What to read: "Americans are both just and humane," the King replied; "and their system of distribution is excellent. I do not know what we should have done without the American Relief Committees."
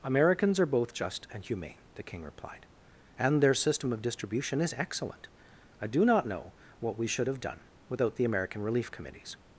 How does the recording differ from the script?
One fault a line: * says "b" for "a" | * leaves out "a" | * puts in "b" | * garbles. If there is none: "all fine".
all fine